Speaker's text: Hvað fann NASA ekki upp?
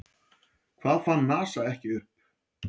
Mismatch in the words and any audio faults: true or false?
false